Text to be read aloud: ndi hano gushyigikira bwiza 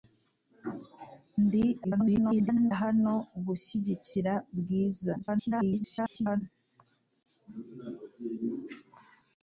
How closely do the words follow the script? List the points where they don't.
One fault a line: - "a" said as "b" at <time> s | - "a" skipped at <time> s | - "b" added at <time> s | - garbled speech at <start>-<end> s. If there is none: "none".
- garbled speech at 1.8-2.7 s
- garbled speech at 5.2-6.4 s